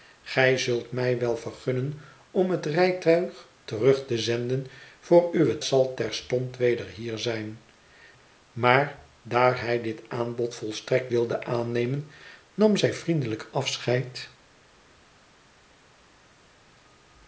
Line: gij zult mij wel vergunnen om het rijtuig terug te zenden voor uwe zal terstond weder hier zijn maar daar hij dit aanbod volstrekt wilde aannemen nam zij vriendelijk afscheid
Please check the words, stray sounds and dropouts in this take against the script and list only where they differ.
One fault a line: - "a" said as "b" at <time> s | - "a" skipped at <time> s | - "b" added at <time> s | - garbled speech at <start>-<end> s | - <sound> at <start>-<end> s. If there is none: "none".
none